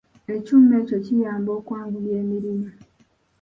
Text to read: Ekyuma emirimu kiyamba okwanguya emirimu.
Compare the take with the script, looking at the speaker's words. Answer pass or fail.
fail